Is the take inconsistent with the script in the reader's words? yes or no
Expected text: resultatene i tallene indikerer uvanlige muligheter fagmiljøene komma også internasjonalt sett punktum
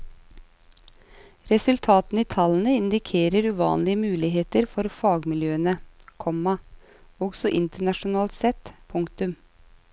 yes